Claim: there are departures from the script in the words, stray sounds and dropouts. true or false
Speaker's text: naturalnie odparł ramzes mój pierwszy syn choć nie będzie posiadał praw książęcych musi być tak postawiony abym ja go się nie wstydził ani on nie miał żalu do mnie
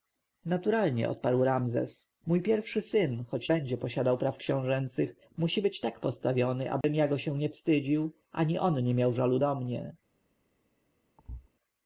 true